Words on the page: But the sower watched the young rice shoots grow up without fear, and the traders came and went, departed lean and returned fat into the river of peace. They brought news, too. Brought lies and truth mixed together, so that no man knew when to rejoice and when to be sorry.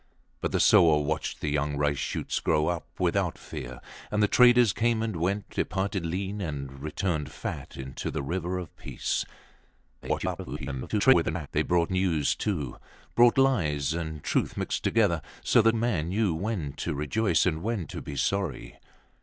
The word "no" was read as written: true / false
false